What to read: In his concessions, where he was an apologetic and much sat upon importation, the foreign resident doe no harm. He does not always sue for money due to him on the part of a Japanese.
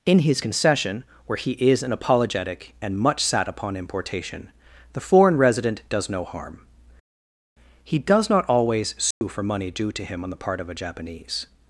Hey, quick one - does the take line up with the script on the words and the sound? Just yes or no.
no